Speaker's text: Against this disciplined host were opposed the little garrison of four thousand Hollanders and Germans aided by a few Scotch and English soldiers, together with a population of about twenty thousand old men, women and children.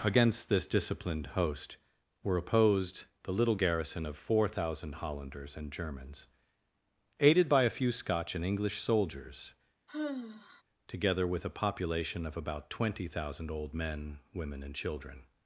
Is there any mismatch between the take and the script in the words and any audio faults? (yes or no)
yes